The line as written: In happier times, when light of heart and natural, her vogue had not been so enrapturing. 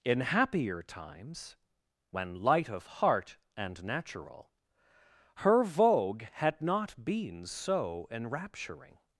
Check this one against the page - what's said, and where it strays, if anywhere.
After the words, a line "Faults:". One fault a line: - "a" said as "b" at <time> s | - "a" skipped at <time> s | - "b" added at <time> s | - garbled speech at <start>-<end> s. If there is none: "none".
In happier times, when light of heart and natural, her vogue had not been so enrapturing.
Faults:
none